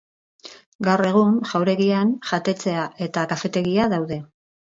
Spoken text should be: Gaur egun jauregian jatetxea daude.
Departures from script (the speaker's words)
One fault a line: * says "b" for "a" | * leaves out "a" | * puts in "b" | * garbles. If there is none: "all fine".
* puts in "eta kafetegia"